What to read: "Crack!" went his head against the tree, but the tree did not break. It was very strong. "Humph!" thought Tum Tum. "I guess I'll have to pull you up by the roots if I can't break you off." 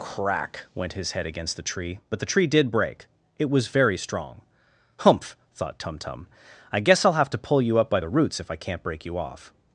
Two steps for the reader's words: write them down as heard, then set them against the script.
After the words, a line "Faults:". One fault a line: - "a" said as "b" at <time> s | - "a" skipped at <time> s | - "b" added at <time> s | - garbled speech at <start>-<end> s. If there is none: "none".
"Crack!" went his head against the tree, but the tree did break. It was very strong. "Humph!" thought Tum Tum. "I guess I'll have to pull you up by the roots if I can't break you off."
Faults:
- "not" skipped at 2.7 s